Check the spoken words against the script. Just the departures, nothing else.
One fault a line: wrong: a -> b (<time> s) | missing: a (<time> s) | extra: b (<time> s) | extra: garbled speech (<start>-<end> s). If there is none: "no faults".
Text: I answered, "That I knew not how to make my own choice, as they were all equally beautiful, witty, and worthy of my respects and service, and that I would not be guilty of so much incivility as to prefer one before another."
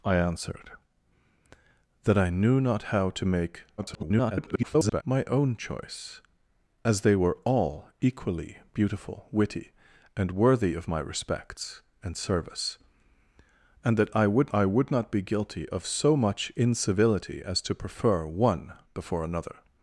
extra: garbled speech (3.8-5.0 s)
extra: I would (14.5 s)